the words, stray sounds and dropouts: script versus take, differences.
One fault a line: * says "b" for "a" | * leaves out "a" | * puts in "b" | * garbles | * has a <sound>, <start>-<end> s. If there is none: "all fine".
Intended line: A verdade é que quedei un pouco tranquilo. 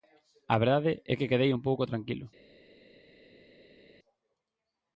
all fine